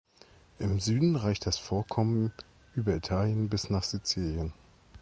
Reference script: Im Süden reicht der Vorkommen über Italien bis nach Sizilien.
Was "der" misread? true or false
true